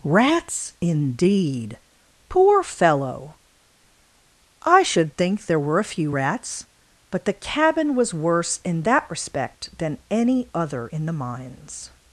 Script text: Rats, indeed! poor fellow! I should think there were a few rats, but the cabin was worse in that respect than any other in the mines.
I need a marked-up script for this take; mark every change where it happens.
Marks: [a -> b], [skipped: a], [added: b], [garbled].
Rats, indeed! poor fellow! I should think there were a few rats, but the cabin was worse in that respect than any other in the mines.